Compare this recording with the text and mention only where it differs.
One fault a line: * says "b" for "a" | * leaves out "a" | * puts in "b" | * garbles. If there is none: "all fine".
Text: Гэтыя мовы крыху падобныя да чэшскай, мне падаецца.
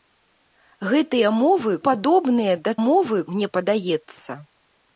* leaves out "крыху"
* says "мовы" for "чэшскай"